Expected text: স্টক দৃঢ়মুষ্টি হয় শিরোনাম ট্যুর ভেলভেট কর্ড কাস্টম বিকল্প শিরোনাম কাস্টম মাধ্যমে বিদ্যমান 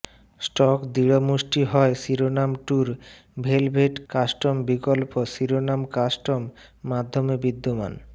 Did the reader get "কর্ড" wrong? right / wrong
wrong